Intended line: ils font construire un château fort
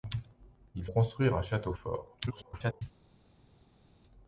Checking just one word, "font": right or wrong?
wrong